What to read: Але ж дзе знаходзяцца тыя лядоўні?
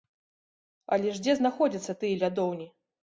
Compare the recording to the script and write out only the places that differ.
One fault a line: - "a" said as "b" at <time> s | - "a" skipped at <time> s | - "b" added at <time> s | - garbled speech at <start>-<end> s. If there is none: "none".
none